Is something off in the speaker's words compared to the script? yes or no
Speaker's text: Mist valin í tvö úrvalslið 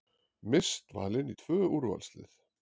no